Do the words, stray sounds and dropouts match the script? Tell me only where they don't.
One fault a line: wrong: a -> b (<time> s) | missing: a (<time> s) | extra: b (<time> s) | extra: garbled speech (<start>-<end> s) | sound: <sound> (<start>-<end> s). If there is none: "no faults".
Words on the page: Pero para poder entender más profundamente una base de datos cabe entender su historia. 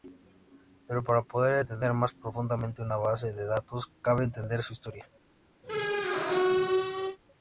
sound: squeak (5.6-7.2 s)